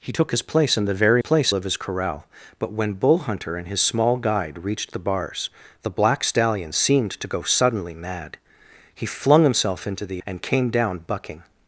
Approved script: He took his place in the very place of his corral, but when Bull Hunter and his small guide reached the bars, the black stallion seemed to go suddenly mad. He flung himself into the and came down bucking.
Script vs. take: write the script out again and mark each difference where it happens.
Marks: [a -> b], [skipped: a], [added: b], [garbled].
He took his place in the very place of his corral, but when Bull Hunter and his small guide reached the bars, the black stallion seemed to go suddenly mad. He flung himself into the and came down bucking.